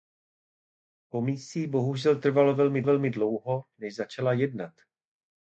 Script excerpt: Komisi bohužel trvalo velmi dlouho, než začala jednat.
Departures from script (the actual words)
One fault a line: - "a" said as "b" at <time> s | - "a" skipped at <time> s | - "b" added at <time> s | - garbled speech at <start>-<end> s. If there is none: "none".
- "velmi" added at 2.8 s